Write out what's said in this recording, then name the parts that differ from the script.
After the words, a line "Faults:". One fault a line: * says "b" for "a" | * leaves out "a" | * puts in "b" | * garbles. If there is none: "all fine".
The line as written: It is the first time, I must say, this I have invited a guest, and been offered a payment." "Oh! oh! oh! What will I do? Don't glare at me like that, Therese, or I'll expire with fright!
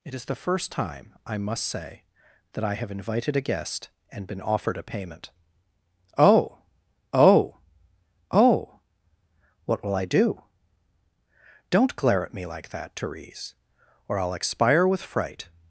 It is the first time, I must say, that I have invited a guest, and been offered a payment." "Oh! oh! oh! What will I do? Don't glare at me like that, Therese, or I'll expire with fright!
Faults:
* says "that" for "this"